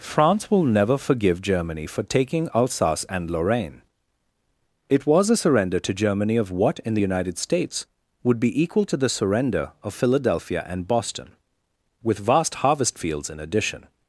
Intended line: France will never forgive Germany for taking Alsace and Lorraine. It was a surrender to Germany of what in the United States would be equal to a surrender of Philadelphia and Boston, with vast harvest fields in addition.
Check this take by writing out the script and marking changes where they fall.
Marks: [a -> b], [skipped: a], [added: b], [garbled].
France will never forgive Germany for taking Alsace and Lorraine. It was a surrender to Germany of what in the United States would be equal to [a -> the] surrender of Philadelphia and Boston, with vast harvest fields in addition.